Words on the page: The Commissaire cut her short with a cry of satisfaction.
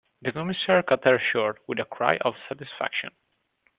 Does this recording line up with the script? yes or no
yes